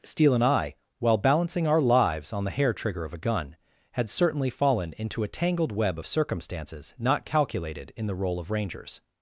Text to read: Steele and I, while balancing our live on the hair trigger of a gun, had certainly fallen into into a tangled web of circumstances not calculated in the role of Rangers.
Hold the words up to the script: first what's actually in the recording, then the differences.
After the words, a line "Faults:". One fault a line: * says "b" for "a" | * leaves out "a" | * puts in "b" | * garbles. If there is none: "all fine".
Steele and I, while balancing our lives on the hair trigger of a gun, had certainly fallen into a tangled web of circumstances not calculated in the role of Rangers.
Faults:
* says "lives" for "live"
* leaves out "into"